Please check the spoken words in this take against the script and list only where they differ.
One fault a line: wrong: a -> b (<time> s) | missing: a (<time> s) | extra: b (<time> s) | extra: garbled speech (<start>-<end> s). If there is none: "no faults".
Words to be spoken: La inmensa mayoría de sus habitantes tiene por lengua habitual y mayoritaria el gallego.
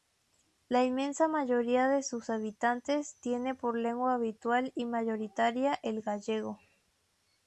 no faults